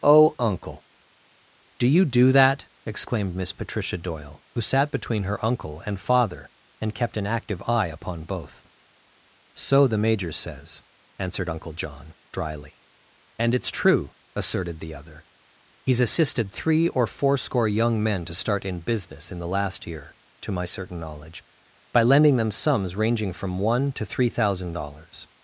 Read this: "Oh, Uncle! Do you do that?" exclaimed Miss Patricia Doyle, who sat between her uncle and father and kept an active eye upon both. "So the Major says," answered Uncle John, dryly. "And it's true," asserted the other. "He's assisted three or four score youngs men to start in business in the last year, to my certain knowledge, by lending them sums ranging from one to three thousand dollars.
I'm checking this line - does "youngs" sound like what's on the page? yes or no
no